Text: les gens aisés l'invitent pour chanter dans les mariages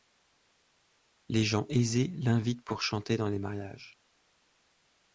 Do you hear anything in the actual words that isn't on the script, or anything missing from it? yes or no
no